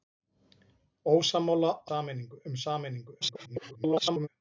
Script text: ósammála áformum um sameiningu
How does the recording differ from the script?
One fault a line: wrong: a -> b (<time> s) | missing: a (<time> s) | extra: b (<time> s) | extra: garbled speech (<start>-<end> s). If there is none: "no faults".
wrong: áformum -> sameiningu (1.9 s)
extra: garbled speech (3.2-4.3 s)